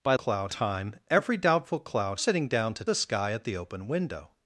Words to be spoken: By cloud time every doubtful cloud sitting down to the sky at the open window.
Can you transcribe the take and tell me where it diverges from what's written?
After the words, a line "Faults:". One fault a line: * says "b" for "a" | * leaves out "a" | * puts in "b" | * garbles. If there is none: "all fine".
By cloud time every doubtful cloud sitting down to the sky at the open window.
Faults:
all fine